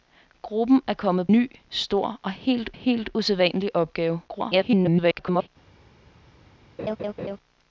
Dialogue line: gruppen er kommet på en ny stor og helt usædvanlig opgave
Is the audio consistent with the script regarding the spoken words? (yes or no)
no